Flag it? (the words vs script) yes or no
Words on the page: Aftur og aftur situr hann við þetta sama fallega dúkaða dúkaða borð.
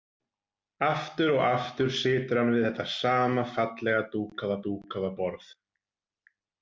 no